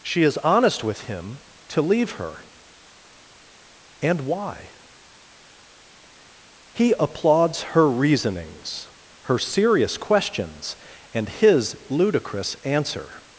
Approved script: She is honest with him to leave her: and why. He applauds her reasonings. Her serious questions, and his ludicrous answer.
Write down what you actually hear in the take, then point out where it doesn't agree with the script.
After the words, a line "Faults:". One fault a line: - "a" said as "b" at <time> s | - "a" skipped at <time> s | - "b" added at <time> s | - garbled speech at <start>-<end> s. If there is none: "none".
She is honest with him to leave her: and why. He applauds her reasonings. Her serious questions, and his ludicrous answer.
Faults:
none